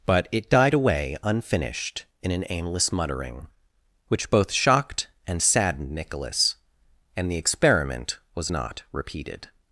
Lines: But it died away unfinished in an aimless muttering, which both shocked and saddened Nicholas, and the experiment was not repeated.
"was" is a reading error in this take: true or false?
false